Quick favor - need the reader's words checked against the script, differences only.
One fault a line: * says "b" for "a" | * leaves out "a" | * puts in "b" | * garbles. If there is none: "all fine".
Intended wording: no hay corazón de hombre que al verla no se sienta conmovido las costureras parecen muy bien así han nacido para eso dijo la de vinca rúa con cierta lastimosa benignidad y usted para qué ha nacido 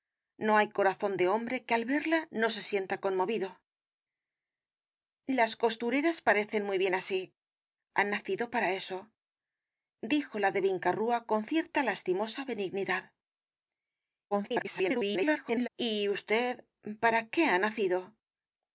* garbles